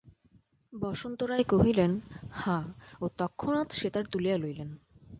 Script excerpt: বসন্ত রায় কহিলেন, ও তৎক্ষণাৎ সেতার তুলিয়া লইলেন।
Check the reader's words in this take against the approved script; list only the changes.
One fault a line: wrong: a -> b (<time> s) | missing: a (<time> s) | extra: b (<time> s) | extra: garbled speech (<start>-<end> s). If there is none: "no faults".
extra: হাঁ (2.3 s)